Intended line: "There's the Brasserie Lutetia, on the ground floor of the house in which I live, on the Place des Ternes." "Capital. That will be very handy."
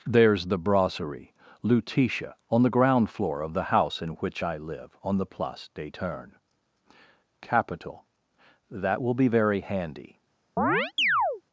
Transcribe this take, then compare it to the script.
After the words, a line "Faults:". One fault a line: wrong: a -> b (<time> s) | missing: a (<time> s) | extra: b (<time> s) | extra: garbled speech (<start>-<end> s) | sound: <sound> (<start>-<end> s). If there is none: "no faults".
"There's the Brasserie Lutetia, on the ground floor of the house in which I live, on the Place des Ternes." "Capital. That will be very handy."
Faults:
sound: chirp (10.6-11.4 s)